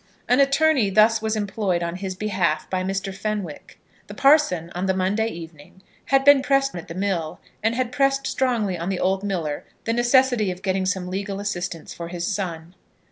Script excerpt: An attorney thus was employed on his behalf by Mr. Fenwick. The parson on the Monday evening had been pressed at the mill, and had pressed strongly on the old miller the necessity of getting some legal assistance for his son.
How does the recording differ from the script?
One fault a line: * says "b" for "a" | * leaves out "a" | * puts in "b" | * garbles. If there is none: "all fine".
all fine